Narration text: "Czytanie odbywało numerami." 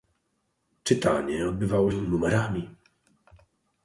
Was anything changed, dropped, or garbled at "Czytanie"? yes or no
no